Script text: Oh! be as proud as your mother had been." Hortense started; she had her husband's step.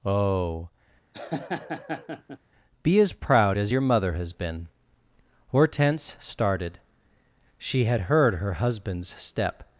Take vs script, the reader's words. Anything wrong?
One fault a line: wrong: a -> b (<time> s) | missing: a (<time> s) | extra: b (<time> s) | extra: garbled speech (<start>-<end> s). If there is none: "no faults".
wrong: had -> has (4.1 s)
extra: heard (8.0 s)